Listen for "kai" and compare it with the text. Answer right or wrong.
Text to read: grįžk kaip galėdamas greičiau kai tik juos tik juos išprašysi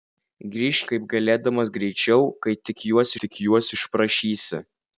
right